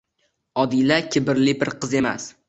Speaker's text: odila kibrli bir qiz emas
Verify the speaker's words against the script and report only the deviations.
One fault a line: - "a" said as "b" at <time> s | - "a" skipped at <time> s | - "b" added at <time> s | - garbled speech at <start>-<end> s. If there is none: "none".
none